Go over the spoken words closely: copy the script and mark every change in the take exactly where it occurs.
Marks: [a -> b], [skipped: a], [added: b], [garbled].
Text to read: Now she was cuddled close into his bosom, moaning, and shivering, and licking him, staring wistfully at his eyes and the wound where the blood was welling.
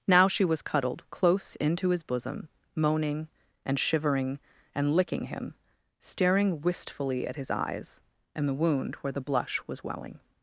Now she was cuddled close into his bosom, moaning, and shivering, and licking him, staring wistfully at his eyes and the wound where the [blood -> blush] was welling.